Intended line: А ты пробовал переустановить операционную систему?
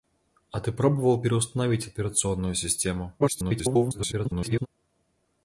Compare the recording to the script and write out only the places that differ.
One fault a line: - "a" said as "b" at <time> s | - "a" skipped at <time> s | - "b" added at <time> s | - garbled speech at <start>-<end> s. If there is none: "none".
- garbled speech at 3.2-4.7 s